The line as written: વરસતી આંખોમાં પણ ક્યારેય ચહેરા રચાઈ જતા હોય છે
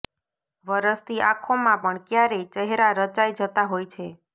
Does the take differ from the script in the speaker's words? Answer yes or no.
no